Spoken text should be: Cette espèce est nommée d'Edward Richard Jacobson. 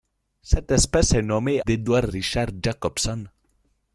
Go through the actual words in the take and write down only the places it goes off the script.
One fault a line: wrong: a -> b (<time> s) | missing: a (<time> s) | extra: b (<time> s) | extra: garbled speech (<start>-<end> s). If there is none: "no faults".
no faults